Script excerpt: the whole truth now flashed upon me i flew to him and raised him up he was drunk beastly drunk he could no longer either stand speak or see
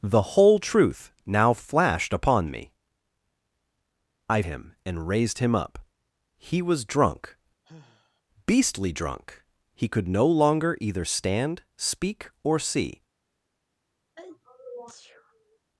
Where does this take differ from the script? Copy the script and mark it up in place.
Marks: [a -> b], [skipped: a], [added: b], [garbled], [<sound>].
the whole truth now flashed upon me i [skipped: flew to] him and raised him up he was drunk [sigh] beastly drunk he could no longer either stand speak or see [sneeze]